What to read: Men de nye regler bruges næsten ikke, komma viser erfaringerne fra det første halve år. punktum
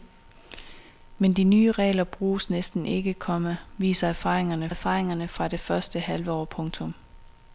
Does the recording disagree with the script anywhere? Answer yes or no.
yes